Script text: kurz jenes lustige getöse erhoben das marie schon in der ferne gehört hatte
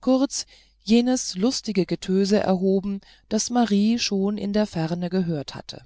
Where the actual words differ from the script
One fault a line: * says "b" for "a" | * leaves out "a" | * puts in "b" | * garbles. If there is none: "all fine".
all fine